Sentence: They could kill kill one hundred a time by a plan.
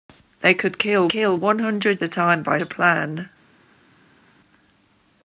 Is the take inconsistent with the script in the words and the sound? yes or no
no